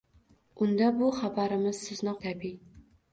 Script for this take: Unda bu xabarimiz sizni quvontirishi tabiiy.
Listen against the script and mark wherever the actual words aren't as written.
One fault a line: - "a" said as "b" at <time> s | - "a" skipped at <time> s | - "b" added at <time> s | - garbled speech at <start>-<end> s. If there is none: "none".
- "quvontirishi" skipped at 2.1 s